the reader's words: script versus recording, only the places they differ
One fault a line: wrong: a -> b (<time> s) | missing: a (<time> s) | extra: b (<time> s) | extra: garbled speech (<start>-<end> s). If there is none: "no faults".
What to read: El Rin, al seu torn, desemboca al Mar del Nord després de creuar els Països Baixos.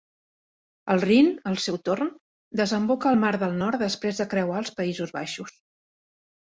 no faults